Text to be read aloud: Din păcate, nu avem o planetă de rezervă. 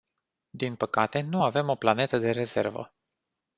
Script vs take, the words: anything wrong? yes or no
no